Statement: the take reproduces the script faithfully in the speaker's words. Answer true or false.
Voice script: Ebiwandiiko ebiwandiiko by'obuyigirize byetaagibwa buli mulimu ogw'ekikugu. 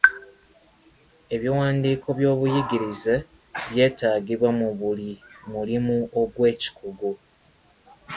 false